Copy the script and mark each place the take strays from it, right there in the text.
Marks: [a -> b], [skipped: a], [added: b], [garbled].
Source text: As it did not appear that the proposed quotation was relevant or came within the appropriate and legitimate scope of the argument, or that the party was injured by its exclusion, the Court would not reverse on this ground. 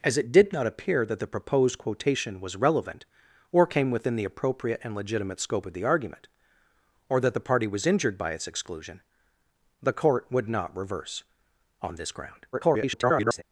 As it did not appear that the proposed quotation was relevant or came within the appropriate and legitimate scope of the argument, or that the party was injured by its exclusion, the Court would not reverse on this ground. [garbled]